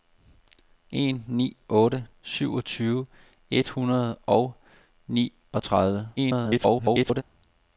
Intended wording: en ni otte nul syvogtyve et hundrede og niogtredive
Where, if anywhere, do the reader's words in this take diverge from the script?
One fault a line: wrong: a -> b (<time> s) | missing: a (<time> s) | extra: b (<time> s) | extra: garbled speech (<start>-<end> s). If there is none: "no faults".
missing: nul (2.1 s)
extra: garbled speech (6.2-7.2 s)